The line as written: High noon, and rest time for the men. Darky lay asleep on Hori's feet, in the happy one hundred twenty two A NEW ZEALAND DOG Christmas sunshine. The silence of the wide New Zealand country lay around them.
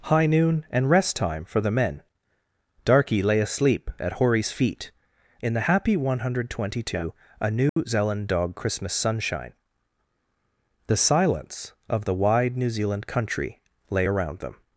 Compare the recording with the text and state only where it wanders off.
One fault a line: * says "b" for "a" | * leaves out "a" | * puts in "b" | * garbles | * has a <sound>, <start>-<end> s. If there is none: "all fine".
* says "at" for "on"
* has a dropout, 7.7-7.8 s